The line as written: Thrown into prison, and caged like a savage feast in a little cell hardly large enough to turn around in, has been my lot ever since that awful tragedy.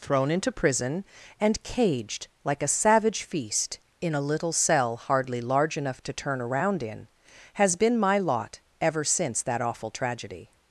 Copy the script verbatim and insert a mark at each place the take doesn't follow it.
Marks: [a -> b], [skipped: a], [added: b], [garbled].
Thrown into prison, and caged like a savage feast in a little cell hardly large enough to turn around in, has been my lot ever since that awful tragedy.